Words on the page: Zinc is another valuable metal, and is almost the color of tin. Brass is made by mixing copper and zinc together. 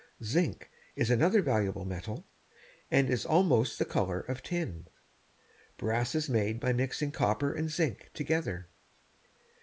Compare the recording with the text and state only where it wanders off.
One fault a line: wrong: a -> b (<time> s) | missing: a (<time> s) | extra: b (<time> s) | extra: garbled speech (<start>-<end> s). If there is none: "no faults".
no faults